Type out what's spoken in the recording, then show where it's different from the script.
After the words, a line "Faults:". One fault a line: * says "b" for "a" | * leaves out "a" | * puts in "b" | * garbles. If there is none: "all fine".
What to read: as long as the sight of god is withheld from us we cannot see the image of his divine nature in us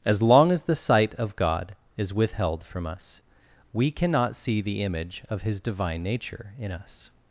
as long as the sight of god is withheld from us we cannot see the image of his divine nature in us
Faults:
all fine